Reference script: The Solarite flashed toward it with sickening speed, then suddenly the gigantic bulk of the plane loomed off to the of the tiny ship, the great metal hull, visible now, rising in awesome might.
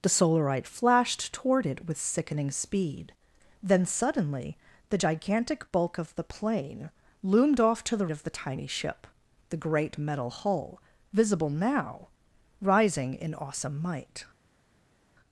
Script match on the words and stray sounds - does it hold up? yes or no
yes